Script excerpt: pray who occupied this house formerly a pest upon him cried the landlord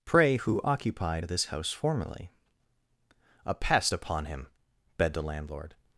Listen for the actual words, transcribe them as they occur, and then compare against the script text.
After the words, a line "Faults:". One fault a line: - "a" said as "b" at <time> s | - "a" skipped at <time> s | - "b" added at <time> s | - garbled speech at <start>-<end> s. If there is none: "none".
pray who occupied this house formerly a pest upon him begged the landlord
Faults:
- "cried" said as "begged" at 5.0 s